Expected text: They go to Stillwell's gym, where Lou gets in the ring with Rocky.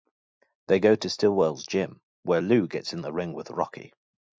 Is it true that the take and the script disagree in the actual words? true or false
false